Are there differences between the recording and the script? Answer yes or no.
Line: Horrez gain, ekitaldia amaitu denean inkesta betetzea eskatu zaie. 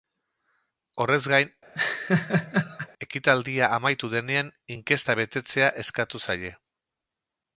no